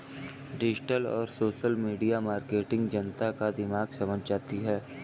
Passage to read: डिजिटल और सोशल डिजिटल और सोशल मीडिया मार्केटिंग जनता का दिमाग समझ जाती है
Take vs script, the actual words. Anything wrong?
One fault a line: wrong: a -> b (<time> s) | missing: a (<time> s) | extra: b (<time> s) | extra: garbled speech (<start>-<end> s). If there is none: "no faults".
missing: डिजिटल और सोशल (1.8 s)